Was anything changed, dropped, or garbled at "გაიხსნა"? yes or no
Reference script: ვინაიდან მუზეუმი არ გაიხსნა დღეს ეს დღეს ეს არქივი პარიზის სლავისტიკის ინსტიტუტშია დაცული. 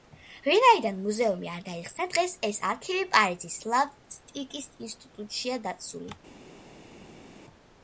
no